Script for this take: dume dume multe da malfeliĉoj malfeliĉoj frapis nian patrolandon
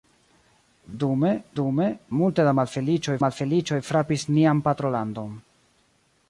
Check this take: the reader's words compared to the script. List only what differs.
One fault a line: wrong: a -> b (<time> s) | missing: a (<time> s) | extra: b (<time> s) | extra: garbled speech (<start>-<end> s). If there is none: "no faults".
no faults